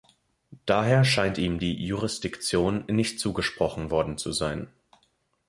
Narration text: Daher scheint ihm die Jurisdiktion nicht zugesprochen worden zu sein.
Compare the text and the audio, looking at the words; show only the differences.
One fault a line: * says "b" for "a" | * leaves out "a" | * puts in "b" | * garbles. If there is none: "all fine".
all fine